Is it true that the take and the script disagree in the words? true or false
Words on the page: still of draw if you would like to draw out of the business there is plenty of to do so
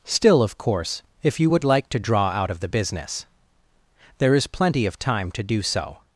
true